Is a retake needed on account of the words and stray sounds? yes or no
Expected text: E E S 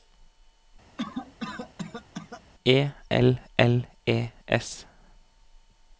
yes